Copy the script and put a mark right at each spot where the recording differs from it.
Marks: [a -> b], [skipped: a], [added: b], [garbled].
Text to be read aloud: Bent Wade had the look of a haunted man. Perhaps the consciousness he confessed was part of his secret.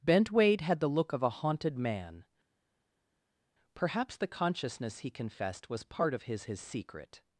Bent Wade had the look of a haunted man. Perhaps the consciousness he confessed was part of his [added: his] secret.